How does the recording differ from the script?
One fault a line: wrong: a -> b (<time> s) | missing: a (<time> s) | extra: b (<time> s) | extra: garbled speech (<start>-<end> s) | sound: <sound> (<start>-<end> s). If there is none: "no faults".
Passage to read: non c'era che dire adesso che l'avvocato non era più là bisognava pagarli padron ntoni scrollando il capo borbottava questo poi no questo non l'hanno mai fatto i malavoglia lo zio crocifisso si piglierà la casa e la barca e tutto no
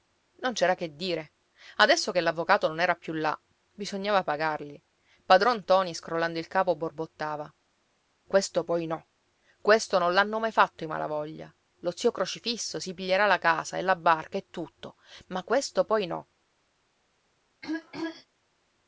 extra: ma questo poi (15.3 s)
sound: throat clearing (17.6-18.3 s)